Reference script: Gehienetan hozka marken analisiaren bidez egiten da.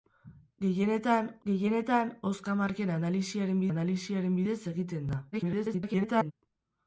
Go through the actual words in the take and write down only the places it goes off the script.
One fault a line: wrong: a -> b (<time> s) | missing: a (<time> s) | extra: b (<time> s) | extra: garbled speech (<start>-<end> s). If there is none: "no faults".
extra: gehienetan (1.5 s)
extra: analisiaren (3.7 s)
extra: garbled speech (5.3-6.3 s)